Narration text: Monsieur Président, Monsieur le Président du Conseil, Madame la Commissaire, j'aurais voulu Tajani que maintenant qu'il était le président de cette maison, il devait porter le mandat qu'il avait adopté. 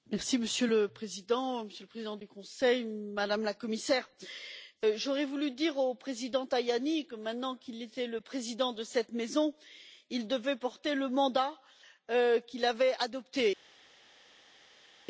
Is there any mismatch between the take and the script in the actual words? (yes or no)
yes